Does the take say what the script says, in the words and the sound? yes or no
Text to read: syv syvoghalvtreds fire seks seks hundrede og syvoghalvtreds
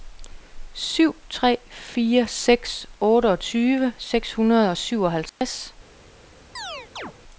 no